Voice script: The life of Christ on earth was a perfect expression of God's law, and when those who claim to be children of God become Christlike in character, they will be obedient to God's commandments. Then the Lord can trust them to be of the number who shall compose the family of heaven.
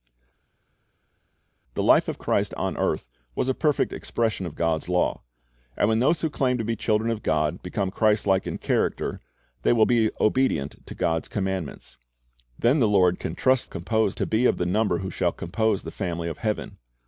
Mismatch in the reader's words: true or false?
true